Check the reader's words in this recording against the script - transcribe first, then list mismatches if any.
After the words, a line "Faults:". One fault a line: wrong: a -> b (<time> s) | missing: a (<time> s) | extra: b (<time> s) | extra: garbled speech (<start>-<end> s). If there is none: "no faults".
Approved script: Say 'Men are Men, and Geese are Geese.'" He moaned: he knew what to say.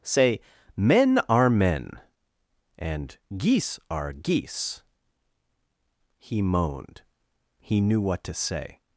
Say 'Men are Men, and Geese are Geese.'" He moaned: he knew what to say.
Faults:
no faults